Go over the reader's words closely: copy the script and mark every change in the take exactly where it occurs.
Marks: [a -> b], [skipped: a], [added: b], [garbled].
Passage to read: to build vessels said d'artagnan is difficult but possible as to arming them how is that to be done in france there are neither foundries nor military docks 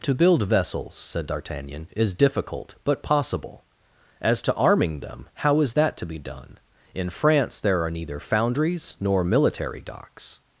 to build vessels said d'artagnan is difficult but possible as to arming them how is that to be done in france there are neither foundries nor military docks